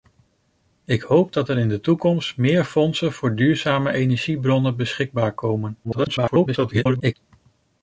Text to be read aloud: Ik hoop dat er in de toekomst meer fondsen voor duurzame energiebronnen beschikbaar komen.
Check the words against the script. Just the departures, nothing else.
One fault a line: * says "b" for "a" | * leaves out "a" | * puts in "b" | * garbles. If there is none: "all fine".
* garbles